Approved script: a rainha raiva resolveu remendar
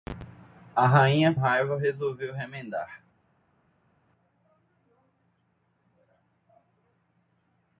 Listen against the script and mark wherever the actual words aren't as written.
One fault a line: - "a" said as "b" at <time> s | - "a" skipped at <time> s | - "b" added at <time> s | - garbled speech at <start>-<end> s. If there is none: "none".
none